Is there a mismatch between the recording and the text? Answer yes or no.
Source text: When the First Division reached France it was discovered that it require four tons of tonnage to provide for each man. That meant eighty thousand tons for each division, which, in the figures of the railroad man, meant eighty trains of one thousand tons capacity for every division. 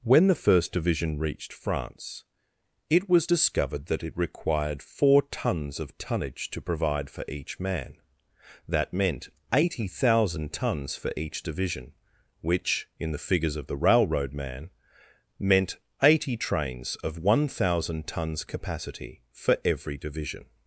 yes